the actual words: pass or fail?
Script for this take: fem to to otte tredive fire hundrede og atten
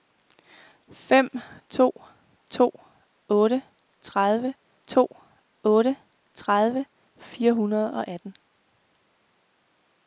fail